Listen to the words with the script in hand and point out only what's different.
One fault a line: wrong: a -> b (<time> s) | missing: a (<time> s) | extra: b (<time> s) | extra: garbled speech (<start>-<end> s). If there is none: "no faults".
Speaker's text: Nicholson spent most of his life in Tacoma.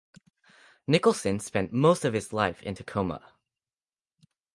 no faults